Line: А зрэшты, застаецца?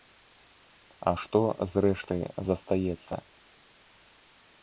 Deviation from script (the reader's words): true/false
true